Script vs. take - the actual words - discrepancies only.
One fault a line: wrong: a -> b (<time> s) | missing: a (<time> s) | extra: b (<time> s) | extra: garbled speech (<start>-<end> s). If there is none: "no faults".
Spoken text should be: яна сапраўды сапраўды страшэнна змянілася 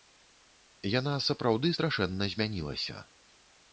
missing: сапраўды (1.7 s)